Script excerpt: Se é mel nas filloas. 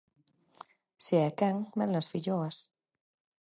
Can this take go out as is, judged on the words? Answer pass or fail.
fail